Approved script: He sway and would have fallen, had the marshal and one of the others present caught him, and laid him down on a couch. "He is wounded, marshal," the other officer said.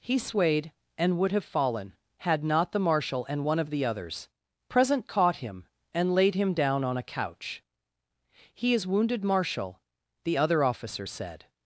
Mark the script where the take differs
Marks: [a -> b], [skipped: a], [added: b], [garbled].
He [sway -> swayed] and would have fallen, had [added: not] the marshal and one of the others present caught him, and laid him down on a couch. "He is wounded, marshal," the other officer said.